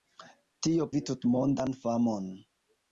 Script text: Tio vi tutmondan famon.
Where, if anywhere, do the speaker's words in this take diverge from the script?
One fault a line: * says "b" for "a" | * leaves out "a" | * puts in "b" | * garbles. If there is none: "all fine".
all fine